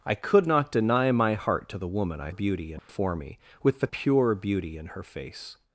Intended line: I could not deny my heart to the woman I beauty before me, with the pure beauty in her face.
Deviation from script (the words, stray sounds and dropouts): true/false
true